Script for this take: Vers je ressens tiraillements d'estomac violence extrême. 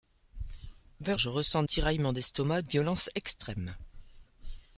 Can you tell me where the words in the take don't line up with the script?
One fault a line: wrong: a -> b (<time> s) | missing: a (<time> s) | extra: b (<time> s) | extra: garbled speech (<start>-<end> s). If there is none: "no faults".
no faults